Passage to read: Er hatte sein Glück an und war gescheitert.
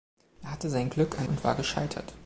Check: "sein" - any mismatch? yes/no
no